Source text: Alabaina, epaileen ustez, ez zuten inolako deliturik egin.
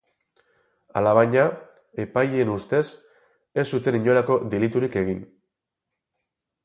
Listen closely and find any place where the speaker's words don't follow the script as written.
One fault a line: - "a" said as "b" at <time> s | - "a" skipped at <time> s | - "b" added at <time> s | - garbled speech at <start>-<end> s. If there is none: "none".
none